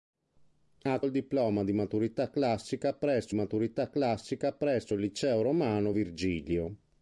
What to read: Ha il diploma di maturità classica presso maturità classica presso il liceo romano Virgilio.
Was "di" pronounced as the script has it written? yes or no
yes